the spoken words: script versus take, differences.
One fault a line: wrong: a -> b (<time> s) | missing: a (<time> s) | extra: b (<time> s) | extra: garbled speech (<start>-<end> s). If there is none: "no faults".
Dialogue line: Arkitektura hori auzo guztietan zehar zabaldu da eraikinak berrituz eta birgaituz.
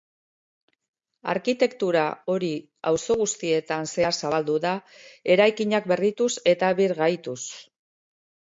no faults